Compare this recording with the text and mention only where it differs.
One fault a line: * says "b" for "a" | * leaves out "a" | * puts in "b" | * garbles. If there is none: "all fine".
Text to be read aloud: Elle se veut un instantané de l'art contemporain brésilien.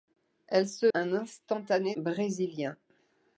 * leaves out "veut"
* leaves out "de l'art contemporain"